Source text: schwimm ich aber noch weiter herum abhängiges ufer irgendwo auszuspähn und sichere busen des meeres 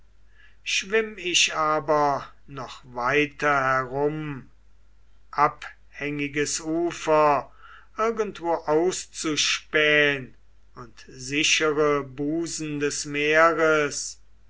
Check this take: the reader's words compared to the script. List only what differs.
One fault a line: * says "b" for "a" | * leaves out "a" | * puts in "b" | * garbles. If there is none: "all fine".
all fine